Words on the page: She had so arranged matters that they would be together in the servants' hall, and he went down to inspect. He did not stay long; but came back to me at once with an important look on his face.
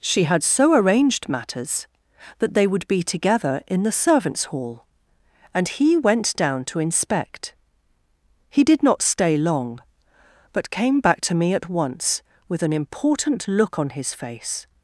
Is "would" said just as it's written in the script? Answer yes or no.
yes